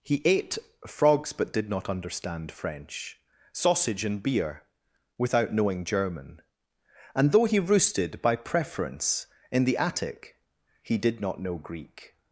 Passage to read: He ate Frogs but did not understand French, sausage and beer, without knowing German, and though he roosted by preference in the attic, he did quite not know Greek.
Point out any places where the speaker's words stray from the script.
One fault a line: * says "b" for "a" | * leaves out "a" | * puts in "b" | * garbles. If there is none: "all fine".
* leaves out "quite"